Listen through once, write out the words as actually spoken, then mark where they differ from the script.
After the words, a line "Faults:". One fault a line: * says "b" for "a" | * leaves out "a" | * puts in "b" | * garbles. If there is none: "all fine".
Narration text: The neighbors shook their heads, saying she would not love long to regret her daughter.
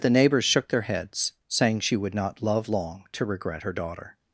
The neighbors shook their heads, saying she would not love long to regret her daughter.
Faults:
all fine